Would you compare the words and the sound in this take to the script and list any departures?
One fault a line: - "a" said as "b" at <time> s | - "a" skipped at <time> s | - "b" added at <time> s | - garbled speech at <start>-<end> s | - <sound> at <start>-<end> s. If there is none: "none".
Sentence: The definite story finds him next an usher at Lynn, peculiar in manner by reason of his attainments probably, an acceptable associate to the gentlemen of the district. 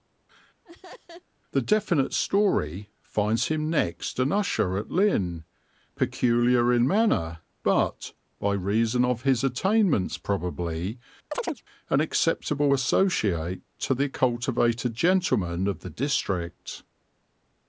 - laugh at 0.6-1.2 s
- "but" added at 7.6 s
- chirp at 11.3-11.6 s
- "cultivated" added at 14.1 s